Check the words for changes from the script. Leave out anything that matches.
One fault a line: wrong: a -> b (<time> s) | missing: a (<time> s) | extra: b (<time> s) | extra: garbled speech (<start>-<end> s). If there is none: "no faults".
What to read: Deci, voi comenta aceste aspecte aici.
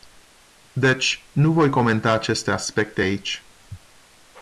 extra: nu (1.3 s)